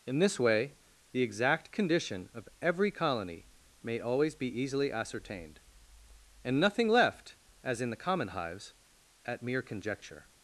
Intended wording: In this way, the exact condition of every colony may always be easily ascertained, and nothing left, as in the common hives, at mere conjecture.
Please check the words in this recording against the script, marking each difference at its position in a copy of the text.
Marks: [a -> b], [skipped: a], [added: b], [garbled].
In this way, the exact condition of every colony may always be easily ascertained, and nothing left, as in the common hives, at mere conjecture.